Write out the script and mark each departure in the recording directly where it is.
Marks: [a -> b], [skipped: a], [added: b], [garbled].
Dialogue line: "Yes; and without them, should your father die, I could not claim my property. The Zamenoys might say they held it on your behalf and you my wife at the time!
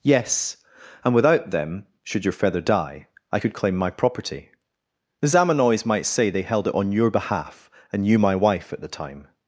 "Yes; and without them, should your [father -> feather] die, I could [skipped: not] claim my property. The Zamenoys might say they held it on your behalf and you my wife at the time!